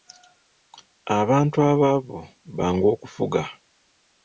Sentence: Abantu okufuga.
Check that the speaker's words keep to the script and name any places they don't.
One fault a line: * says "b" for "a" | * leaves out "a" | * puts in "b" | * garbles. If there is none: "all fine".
* puts in "abaavu bangu"